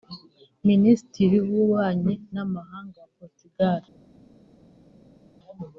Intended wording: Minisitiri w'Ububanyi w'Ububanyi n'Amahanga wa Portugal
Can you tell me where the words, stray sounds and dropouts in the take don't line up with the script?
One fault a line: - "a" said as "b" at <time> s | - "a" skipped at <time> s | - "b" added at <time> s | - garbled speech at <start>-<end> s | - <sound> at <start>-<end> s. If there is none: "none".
- "w'Ububanyi" skipped at 2.1 s